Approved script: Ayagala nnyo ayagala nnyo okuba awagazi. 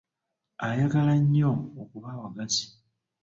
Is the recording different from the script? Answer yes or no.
yes